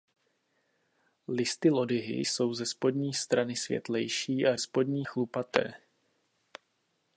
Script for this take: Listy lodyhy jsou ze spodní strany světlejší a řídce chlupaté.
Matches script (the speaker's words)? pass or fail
fail